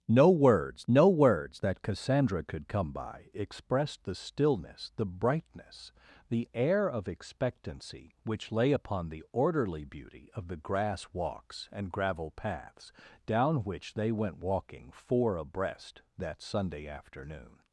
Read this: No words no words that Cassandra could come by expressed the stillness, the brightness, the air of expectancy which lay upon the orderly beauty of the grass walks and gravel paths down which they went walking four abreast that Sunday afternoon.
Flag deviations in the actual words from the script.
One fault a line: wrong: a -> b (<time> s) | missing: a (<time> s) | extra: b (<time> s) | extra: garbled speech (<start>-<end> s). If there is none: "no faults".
no faults